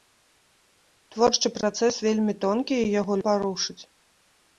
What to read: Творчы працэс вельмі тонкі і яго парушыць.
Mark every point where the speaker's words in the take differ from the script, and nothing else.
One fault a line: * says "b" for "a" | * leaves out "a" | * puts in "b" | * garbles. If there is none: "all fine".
all fine